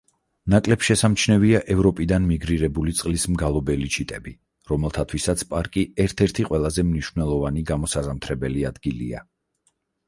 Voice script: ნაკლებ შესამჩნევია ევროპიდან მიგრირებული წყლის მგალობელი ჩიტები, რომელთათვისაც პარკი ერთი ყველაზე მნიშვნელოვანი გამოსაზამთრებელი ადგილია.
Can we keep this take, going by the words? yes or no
no